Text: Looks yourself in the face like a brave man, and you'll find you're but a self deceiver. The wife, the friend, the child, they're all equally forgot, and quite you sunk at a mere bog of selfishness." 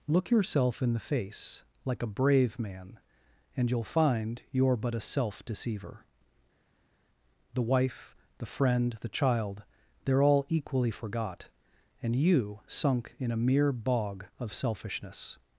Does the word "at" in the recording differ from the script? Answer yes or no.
yes